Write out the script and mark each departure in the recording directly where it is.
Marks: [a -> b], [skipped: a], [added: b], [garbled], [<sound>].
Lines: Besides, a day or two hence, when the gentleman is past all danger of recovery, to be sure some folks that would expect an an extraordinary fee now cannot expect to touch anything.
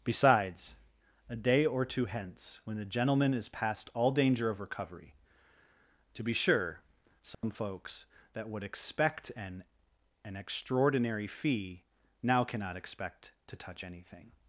Besides, a day or two hence, when the gentleman is past all danger of recovery, to be sure some [dropout] folks that would expect an an extraordinary fee now cannot expect to touch anything.